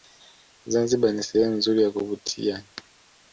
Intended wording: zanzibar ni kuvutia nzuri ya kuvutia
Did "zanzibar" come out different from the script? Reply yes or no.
no